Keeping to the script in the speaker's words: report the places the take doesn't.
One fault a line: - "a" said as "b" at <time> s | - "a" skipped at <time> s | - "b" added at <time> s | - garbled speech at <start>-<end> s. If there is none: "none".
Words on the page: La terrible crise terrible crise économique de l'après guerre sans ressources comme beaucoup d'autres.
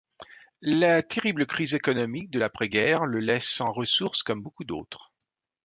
- "terrible crise" skipped at 1.8 s
- "le laisse" added at 3.1 s